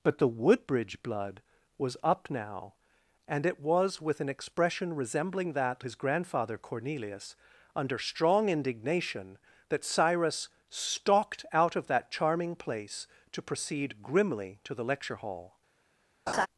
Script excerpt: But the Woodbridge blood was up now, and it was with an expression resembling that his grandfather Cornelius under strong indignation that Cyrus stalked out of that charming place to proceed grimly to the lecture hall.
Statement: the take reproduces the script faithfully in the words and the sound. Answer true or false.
false